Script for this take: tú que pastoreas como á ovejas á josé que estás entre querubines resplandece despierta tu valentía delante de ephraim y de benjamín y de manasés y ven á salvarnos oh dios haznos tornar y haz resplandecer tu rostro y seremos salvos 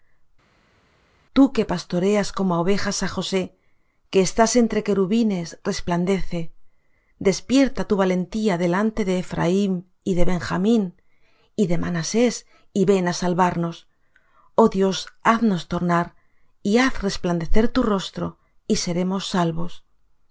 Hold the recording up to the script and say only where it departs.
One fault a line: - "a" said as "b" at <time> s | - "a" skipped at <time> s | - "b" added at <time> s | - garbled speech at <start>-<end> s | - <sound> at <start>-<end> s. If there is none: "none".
none